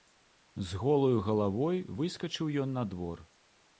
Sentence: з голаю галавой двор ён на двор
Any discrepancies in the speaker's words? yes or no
yes